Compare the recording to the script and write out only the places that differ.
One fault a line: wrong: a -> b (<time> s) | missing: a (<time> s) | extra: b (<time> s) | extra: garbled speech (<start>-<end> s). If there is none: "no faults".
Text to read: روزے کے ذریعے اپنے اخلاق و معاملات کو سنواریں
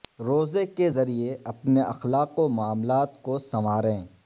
no faults